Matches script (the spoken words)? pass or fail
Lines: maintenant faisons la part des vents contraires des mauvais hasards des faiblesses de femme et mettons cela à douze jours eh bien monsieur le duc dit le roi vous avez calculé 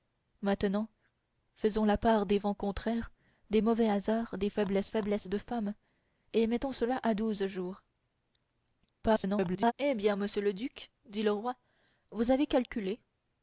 fail